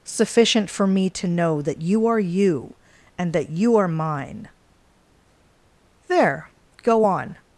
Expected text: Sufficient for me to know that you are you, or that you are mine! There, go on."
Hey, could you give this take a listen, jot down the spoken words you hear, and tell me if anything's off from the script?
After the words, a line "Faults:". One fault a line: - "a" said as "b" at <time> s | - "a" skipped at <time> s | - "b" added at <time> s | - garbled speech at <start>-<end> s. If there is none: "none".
Sufficient for me to know that you are you, and that you are mine! There, go on."
Faults:
- "or" said as "and" at 3.2 s